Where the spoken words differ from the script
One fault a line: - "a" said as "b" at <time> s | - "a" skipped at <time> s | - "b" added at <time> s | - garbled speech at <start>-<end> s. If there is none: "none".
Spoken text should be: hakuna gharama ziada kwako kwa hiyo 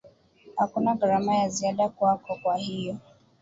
- "ya" added at 1.4 s